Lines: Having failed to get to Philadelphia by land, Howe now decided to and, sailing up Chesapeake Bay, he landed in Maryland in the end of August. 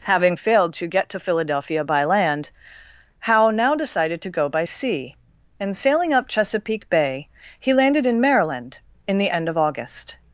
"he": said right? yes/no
yes